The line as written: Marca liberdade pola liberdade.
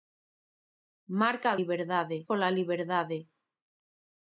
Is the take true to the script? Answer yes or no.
yes